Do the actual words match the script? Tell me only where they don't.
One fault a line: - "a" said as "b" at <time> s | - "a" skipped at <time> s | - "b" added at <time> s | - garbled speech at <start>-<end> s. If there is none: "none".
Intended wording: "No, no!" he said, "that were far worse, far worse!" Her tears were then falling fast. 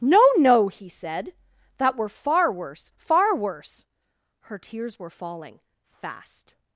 - "then" skipped at 5.1 s